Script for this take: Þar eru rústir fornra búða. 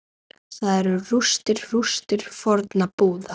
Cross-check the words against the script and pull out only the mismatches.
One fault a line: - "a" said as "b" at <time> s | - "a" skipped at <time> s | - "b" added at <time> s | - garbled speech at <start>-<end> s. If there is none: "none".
- "rústir" added at 1.7 s